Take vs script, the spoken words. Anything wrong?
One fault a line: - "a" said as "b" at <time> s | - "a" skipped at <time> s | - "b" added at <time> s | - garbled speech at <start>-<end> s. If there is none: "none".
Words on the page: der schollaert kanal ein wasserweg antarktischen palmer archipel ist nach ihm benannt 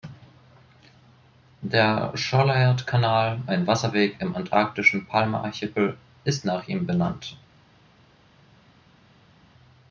- "im" added at 4.2 s